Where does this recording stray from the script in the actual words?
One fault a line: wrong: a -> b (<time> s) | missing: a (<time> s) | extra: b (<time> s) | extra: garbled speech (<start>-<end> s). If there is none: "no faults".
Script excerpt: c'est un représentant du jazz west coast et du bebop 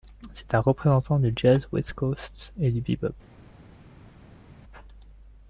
no faults